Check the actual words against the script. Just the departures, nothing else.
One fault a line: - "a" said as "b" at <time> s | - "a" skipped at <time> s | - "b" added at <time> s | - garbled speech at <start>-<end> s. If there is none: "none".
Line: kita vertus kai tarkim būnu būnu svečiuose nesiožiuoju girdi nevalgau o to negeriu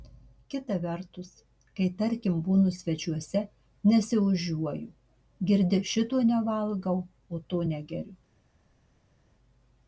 - "būnu" skipped at 2.7 s
- "šito" added at 5.9 s